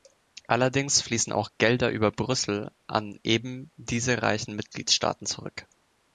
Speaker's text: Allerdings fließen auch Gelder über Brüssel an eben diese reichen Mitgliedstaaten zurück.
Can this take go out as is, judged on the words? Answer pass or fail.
pass